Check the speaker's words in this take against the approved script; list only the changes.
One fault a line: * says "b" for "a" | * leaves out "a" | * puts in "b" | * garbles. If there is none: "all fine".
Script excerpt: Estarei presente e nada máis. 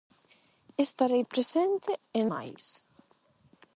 * leaves out "nada"